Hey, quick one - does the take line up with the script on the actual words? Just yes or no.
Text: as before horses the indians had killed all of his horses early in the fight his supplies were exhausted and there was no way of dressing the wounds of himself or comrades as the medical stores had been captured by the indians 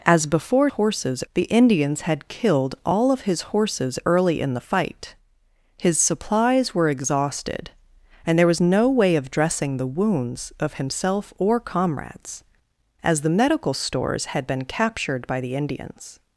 yes